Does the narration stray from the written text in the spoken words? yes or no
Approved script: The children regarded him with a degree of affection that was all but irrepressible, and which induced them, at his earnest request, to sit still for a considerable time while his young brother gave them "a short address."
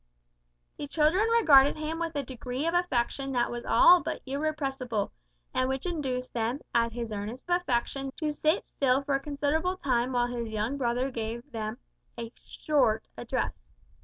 yes